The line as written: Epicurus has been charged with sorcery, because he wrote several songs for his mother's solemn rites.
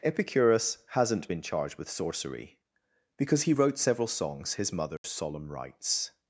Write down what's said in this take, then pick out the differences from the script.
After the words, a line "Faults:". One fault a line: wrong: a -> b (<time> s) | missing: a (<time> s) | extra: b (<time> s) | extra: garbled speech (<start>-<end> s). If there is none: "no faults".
Epicurus hasn't been charged with sorcery, because he wrote several songs his mother's solemn rites.
Faults:
wrong: has -> hasn't (0.9 s)
missing: for (4.6 s)